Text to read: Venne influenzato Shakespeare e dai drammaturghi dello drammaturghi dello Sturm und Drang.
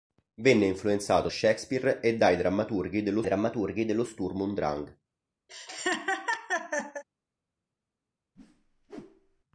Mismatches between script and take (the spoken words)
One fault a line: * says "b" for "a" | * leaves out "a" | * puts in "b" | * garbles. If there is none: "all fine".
all fine